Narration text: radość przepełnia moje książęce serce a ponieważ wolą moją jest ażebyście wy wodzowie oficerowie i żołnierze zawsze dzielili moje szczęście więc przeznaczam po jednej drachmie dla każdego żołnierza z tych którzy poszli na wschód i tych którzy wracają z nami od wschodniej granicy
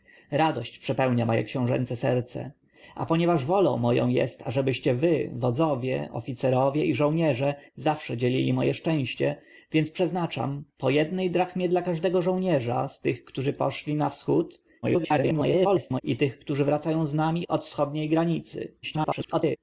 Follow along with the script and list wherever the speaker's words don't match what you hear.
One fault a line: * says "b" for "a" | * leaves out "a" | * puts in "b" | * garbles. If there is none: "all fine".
* garbles
* garbles